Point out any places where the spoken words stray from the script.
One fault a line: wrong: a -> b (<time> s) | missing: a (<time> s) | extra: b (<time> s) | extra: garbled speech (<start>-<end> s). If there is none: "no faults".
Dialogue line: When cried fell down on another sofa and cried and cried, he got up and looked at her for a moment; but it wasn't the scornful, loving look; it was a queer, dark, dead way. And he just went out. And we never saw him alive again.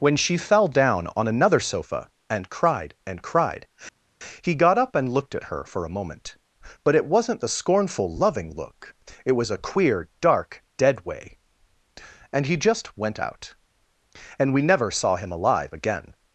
wrong: cried -> she (0.1 s)